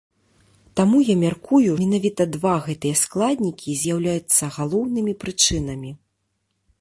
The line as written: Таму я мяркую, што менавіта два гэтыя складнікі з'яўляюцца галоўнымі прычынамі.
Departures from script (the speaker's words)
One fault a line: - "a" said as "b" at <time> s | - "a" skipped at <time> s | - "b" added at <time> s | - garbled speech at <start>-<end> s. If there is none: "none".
- "што" skipped at 1.7 s